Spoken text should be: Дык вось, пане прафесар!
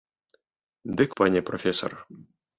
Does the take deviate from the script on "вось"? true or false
true